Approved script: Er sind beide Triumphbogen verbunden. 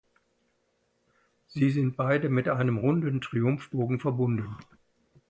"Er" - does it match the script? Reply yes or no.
no